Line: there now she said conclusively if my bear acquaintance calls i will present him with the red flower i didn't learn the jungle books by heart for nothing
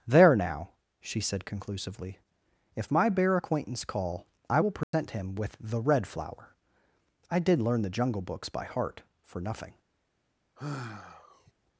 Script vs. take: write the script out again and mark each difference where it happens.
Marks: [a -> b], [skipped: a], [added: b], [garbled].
there now she said conclusively if my bear acquaintance [calls -> call] i will present him with the red flower i [didn't -> did] learn the jungle books by heart for nothing